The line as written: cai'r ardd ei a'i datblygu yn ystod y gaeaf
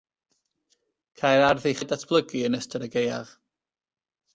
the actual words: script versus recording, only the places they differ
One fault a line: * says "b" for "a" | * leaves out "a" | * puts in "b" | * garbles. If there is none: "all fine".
all fine